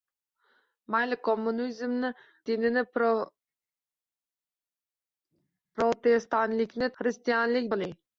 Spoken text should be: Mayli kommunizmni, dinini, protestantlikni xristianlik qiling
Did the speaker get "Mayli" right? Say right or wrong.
right